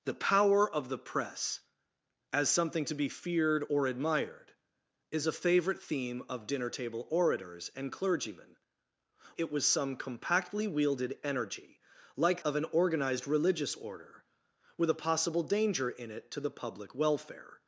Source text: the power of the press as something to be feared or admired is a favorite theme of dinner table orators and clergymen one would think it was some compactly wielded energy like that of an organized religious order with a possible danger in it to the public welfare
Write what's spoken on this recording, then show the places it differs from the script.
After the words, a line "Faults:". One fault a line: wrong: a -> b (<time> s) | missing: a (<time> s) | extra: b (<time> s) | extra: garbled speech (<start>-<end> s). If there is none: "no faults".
the power of the press as something to be feared or admired is a favorite theme of dinner table orators and clergymen it was some compactly wielded energy like of an organized religious order with a possible danger in it to the public welfare
Faults:
missing: one would think (8.5 s)
missing: that (12.4 s)